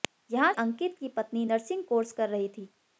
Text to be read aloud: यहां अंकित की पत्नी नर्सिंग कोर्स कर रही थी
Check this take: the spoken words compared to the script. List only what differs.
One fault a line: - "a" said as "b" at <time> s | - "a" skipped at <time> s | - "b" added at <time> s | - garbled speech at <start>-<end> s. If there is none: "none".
none